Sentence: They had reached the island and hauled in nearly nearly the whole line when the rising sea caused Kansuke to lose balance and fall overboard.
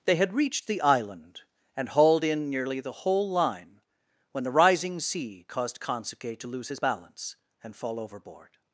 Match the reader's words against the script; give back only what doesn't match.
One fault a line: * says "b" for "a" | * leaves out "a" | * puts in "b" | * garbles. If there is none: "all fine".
* leaves out "nearly"
* puts in "his"